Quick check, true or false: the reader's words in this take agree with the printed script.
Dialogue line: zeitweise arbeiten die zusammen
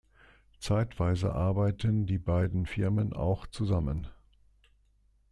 false